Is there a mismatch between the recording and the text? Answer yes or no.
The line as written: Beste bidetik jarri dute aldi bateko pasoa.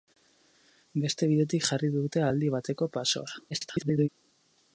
yes